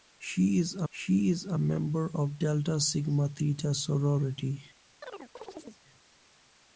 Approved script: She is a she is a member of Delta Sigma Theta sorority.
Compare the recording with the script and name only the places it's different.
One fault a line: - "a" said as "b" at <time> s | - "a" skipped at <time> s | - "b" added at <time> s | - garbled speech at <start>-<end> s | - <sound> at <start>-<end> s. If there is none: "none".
- chirp at 5.0-5.8 s